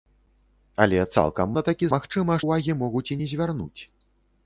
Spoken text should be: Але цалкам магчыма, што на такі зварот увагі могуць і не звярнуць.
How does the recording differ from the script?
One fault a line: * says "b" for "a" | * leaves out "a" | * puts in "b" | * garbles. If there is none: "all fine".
* leaves out "магчыма што"
* says "магчыма" for "зварот"